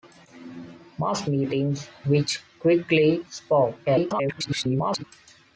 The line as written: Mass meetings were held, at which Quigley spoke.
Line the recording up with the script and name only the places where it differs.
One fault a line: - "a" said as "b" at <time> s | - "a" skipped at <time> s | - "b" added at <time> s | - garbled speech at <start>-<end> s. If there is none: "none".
- "were held at" skipped at 1.9 s
- garbled speech at 3.9-5.0 s